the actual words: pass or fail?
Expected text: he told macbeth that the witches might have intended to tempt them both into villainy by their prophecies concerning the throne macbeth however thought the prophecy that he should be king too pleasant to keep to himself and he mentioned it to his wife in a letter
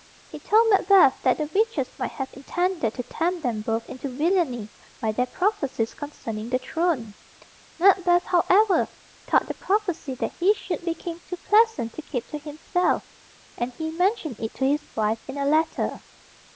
pass